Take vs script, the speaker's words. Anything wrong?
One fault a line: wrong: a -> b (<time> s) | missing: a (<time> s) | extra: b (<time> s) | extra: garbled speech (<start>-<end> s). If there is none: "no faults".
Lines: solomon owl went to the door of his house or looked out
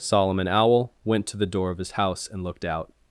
wrong: or -> and (2.3 s)